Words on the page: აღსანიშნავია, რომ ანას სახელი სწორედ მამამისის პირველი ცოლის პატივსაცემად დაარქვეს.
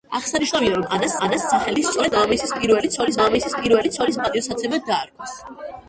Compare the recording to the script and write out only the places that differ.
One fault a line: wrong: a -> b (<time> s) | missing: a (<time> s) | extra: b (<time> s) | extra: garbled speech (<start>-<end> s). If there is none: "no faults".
extra: ანას (1.2 s)
extra: მამამისის პირველი ცოლის (3.2 s)